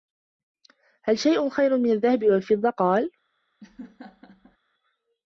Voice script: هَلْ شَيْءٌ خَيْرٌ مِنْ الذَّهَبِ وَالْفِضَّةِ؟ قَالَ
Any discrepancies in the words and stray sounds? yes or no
yes